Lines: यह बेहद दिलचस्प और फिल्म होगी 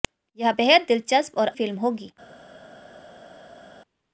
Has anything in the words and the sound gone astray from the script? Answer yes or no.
no